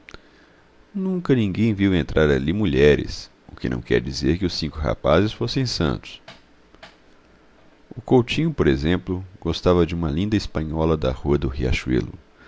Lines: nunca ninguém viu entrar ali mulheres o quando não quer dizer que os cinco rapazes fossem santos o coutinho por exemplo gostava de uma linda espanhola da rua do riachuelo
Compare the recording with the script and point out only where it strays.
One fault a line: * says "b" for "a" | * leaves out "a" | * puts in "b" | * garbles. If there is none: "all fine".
* says "que" for "quando"